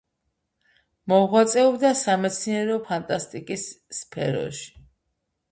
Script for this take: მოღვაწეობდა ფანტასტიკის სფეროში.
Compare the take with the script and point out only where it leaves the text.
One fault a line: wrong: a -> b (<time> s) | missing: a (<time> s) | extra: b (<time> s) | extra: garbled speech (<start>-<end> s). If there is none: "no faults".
extra: სამეცნიერო (2.0 s)